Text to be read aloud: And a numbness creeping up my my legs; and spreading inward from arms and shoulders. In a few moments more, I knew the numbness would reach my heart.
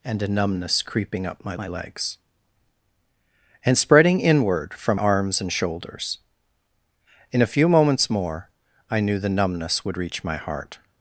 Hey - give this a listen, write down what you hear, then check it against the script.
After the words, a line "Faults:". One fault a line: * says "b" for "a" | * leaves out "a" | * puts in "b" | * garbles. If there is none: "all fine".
And a numbness creeping up my my legs; and spreading inward from arms and shoulders. In a few moments more, I knew the numbness would reach my heart.
Faults:
all fine